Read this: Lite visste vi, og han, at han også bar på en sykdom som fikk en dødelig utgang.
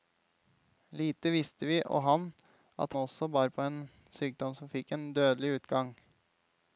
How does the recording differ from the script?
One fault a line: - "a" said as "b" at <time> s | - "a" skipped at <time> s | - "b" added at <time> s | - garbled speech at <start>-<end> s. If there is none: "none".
- "han" skipped at 3.0 s